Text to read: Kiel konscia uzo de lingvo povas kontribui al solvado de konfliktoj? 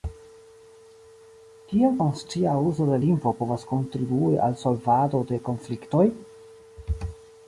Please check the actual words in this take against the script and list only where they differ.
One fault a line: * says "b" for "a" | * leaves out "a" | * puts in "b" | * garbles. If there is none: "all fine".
all fine